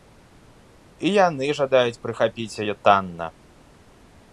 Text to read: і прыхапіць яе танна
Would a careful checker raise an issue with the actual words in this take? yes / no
yes